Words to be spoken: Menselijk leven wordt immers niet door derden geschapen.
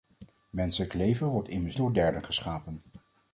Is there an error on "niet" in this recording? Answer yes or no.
yes